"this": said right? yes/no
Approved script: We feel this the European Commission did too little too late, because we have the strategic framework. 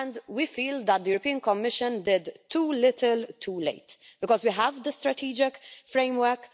no